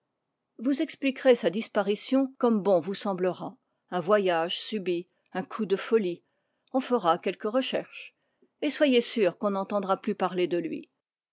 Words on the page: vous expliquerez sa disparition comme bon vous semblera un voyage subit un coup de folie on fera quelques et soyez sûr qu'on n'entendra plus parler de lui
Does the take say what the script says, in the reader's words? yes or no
no